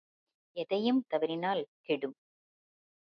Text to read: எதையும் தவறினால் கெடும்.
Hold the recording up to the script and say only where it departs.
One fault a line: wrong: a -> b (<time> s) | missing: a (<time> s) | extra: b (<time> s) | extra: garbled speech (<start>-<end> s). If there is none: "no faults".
no faults